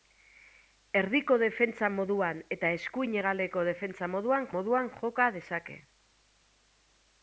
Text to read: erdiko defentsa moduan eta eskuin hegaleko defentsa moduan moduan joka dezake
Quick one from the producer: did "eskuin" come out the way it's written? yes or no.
yes